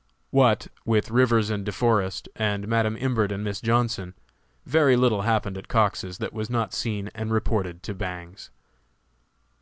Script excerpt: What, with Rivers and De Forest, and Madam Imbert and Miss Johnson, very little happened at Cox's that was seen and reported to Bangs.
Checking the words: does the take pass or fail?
fail